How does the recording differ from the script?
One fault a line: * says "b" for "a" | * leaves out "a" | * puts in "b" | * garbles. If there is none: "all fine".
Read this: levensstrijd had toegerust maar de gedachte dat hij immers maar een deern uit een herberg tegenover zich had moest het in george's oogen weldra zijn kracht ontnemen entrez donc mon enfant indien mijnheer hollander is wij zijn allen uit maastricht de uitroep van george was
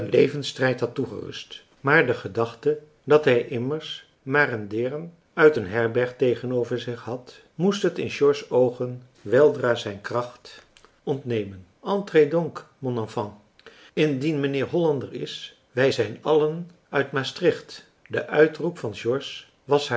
all fine